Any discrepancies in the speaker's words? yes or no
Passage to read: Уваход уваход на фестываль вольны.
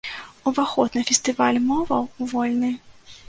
yes